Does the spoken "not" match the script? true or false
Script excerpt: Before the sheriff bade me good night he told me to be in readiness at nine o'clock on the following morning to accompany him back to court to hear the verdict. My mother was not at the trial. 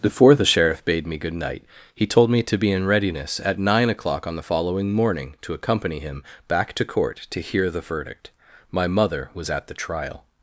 false